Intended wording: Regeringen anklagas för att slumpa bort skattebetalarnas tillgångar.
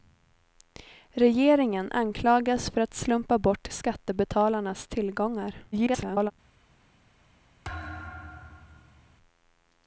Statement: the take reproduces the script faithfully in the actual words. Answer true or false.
false